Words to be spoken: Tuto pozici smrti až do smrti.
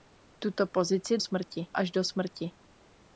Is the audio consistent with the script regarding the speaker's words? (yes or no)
yes